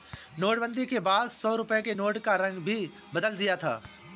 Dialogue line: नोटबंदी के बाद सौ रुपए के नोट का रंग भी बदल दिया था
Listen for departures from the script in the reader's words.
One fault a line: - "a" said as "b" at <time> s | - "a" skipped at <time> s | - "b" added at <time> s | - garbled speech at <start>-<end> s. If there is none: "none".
none